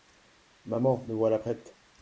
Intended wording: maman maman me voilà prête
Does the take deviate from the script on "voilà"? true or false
false